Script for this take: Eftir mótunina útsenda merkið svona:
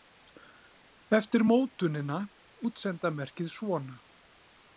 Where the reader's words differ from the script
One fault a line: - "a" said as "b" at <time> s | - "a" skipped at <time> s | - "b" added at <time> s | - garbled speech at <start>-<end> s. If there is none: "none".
none